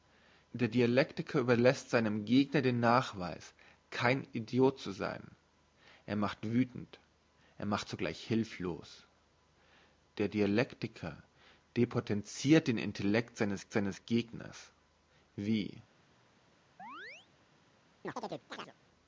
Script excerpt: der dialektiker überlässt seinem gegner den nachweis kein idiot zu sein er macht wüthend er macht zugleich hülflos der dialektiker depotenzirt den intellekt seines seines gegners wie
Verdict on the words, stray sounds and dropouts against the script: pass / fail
fail